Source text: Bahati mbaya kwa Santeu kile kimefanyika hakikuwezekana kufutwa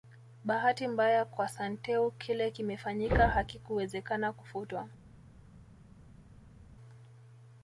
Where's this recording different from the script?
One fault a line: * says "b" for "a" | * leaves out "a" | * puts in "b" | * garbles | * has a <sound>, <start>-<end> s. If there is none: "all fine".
all fine